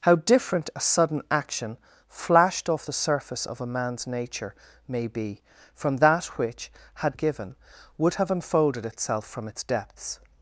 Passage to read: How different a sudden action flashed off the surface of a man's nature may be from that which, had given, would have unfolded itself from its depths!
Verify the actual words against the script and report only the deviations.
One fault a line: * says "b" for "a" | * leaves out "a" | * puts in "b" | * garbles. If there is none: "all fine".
all fine